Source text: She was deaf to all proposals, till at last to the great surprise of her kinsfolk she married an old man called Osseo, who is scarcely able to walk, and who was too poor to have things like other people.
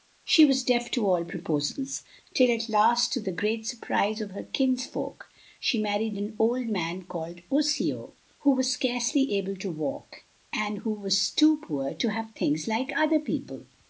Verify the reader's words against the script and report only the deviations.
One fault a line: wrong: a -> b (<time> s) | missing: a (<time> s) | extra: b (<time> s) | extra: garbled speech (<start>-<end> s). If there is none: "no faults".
wrong: is -> was (8.5 s)